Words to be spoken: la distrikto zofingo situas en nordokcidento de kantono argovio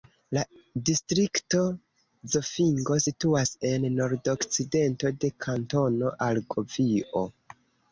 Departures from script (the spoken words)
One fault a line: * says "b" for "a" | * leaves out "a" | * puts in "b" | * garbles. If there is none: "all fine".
all fine